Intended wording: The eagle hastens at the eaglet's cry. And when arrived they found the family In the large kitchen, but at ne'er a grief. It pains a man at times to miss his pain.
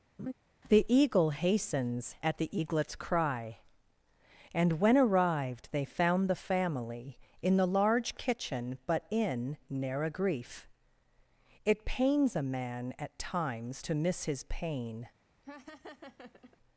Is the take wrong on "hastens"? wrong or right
right